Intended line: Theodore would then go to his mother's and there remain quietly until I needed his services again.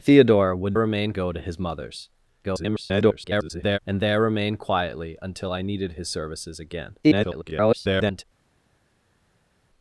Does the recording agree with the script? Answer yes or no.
no